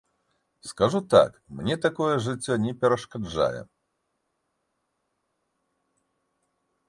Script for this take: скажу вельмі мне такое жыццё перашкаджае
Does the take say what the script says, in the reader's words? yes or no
no